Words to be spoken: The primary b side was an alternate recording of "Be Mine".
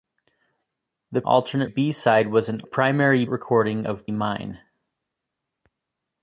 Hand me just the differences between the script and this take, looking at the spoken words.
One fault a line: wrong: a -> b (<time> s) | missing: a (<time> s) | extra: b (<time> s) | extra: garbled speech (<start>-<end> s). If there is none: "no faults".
wrong: primary -> alternate (1.2 s)
wrong: alternate -> primary (2.6 s)
missing: Be (4.1 s)